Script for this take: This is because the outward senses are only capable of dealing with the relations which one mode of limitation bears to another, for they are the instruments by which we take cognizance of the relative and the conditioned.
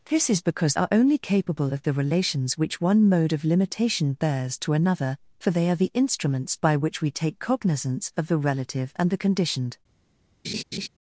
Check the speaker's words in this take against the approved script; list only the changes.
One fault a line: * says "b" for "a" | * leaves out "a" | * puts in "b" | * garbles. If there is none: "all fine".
* leaves out "the outward senses"
* leaves out "dealing with"